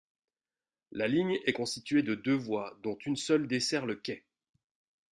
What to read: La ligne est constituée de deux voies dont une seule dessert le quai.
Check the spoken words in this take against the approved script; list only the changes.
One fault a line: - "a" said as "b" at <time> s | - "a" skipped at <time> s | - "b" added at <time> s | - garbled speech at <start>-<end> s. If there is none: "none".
none